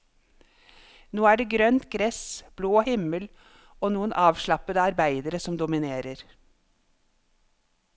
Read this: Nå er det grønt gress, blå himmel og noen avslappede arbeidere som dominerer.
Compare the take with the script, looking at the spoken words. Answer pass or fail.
pass